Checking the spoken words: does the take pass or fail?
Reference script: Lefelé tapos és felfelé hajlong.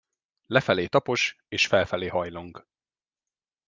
pass